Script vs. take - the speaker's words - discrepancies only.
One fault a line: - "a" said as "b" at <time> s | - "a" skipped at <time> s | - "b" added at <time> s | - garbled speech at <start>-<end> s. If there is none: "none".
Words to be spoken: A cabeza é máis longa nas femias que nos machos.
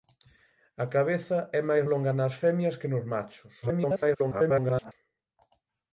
- garbled speech at 3.6-4.9 s